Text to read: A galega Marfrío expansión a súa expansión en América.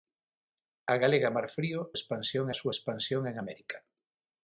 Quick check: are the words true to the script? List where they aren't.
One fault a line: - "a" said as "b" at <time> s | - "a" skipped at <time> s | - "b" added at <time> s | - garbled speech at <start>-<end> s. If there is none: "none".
none